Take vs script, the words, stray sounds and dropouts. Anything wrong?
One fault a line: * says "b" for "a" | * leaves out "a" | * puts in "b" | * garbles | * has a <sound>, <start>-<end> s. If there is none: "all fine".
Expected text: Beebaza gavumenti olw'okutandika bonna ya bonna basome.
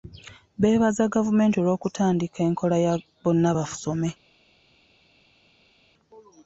* says "enkola" for "bonna"